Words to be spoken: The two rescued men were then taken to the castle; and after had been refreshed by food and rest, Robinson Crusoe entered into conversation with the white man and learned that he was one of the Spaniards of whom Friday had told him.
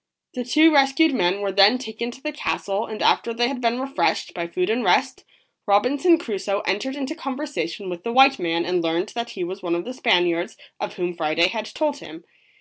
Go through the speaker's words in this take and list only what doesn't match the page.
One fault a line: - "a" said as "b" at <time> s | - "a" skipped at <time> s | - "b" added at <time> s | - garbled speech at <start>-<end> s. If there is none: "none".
- "they" added at 3.4 s